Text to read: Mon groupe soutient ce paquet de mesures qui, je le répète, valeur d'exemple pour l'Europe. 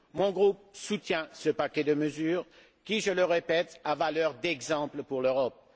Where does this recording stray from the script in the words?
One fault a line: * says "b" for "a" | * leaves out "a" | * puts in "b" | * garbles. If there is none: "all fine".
* puts in "a"